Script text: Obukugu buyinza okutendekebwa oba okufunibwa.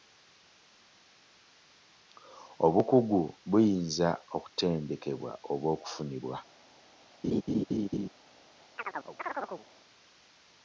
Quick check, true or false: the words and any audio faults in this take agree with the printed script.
false